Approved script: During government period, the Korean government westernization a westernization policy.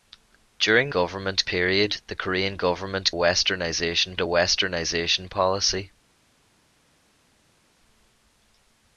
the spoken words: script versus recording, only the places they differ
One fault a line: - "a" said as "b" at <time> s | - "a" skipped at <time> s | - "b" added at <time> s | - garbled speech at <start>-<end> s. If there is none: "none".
none